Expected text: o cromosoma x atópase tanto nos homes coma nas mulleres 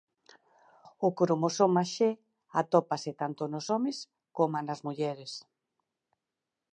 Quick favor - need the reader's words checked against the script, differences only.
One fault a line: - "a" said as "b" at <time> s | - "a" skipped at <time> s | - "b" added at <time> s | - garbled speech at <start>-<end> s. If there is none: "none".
none